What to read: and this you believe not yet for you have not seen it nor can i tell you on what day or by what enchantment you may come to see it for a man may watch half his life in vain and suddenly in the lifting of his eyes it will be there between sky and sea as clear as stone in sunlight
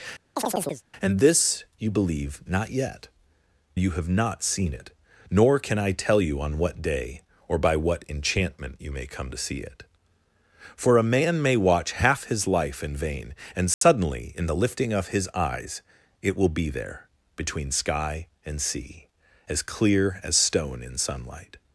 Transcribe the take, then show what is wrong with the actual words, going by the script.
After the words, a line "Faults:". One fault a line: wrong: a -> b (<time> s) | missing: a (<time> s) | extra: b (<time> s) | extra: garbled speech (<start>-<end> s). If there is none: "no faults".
and this you believe not yet you have not seen it nor can i tell you on what day or by what enchantment you may come to see it for a man may watch half his life in vain and suddenly in the lifting of his eyes it will be there between sky and sea as clear as stone in sunlight
Faults:
missing: for (3.1 s)